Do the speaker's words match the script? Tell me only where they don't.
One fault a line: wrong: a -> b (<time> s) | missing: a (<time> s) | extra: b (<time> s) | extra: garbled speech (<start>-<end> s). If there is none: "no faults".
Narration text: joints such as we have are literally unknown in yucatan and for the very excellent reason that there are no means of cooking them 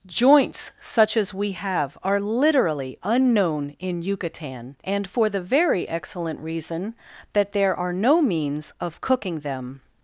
no faults